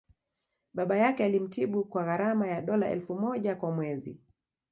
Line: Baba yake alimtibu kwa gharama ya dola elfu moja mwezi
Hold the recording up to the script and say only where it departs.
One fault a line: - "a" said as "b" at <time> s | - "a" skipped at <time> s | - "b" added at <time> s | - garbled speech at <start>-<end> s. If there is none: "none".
- "kwa" added at 3.5 s